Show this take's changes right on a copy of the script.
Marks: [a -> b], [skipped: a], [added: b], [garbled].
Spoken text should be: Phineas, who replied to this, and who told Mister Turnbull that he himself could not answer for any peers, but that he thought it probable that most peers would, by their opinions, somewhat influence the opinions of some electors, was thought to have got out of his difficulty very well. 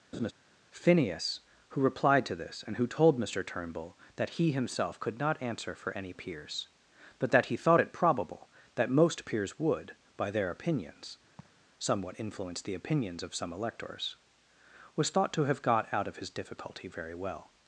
Phineas, who replied to this, and who told Mister Turnbull that he himself could not answer for any peers, but that he thought it probable that most peers would, by their opinions, somewhat influence the opinions of some electors, was thought to have got out of his difficulty very well.